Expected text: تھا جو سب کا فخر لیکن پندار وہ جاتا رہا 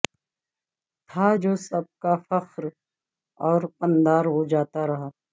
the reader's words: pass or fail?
fail